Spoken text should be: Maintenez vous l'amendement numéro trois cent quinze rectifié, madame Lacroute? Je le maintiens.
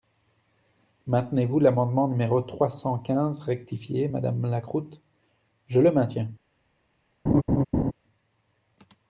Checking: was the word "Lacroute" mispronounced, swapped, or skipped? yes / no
no